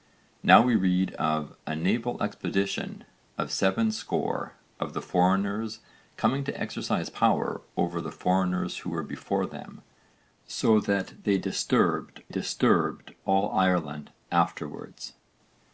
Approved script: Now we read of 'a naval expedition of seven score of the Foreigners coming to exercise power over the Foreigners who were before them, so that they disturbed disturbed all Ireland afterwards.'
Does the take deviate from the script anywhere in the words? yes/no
no